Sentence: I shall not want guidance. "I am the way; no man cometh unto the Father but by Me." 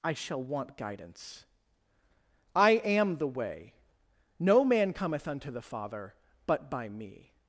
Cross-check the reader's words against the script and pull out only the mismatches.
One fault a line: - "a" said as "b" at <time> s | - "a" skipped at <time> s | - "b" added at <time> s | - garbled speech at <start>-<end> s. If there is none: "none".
- "not" skipped at 0.4 s